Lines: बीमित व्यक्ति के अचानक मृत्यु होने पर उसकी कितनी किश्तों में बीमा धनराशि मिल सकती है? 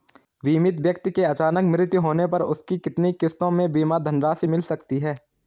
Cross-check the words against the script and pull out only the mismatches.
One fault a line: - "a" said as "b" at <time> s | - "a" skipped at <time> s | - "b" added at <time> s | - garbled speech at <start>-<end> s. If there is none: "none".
none